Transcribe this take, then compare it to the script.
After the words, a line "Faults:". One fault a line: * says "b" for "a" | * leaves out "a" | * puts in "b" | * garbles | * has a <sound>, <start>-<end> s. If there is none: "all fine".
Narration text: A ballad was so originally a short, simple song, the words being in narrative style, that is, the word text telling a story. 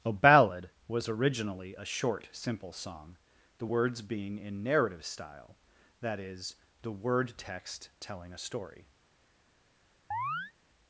A ballad was originally a short, simple song, the words being in narrative style, that is, the word text telling a story.
Faults:
* leaves out "so"
* has a chirp, 10.1-10.5 s